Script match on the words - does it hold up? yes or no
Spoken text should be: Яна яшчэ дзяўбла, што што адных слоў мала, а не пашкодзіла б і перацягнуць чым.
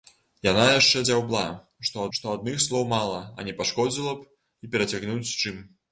yes